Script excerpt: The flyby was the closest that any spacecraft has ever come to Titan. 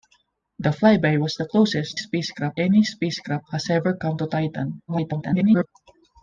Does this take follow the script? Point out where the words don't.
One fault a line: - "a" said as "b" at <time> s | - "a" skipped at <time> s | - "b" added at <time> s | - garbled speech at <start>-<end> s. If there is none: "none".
- "that" said as "spacecraft" at 1.9 s
- garbled speech at 4.9-5.7 s